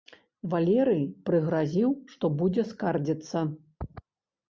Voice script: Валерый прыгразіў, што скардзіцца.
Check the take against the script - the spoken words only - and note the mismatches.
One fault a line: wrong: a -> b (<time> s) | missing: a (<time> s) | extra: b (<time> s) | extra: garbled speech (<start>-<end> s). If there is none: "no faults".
extra: будзе (2.4 s)